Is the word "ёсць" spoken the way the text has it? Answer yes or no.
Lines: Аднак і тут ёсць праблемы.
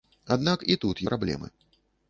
no